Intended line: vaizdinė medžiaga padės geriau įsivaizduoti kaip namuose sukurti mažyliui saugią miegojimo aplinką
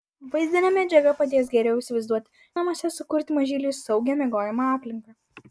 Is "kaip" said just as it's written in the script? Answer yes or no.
no